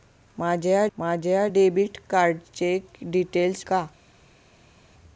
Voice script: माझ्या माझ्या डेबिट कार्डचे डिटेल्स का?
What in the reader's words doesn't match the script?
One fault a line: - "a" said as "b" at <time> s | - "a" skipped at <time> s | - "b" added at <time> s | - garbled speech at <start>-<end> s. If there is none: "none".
none